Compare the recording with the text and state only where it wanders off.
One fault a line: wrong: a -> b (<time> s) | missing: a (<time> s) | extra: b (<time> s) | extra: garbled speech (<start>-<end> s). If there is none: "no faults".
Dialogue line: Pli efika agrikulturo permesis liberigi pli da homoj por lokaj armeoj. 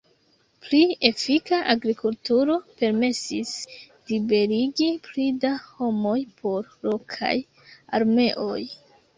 no faults